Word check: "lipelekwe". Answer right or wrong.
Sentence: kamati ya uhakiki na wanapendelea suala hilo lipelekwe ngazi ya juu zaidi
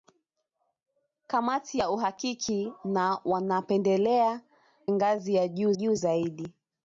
wrong